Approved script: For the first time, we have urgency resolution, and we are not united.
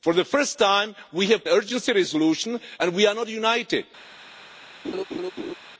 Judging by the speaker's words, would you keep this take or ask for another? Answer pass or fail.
pass